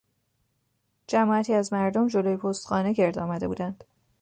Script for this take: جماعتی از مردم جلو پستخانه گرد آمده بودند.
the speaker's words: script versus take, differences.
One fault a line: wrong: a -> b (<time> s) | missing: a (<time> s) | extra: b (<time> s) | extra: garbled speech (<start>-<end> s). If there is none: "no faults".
no faults